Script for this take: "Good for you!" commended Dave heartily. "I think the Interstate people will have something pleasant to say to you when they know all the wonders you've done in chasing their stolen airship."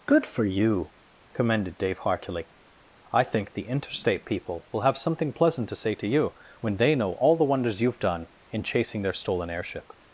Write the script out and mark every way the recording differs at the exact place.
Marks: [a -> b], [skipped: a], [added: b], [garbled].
"Good for you!" commended Dave heartily. "I think the Interstate people will have something pleasant to say to you when they know all the wonders you've done in chasing their stolen airship."